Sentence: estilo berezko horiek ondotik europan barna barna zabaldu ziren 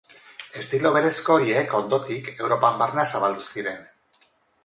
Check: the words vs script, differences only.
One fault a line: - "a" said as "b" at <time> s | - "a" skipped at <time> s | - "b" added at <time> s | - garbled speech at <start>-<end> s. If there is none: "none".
- "barna" skipped at 3.1 s